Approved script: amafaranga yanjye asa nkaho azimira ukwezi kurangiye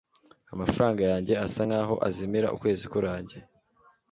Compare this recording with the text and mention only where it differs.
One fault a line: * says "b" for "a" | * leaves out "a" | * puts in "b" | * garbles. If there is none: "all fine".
all fine